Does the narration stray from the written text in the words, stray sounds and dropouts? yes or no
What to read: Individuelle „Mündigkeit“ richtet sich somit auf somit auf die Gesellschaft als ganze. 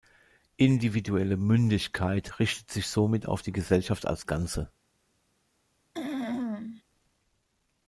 yes